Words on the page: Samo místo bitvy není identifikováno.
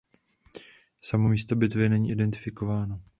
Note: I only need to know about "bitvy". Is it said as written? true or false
true